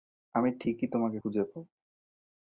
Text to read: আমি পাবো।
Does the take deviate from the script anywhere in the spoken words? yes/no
yes